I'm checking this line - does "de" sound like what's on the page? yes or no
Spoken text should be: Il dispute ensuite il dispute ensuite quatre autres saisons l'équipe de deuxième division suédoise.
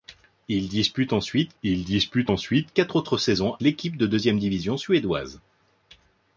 yes